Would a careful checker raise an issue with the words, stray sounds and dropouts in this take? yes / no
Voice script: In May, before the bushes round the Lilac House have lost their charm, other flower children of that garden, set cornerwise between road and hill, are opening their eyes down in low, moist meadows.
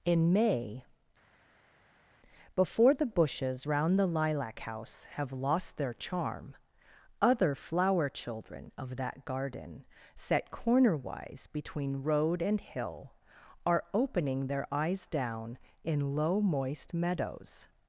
no